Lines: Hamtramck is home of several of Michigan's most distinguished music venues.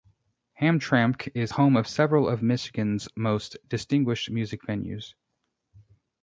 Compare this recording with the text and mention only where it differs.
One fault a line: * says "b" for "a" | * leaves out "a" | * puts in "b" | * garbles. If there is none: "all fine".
all fine